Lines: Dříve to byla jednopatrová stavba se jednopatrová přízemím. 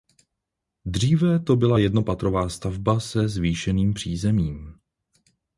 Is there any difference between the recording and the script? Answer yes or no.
yes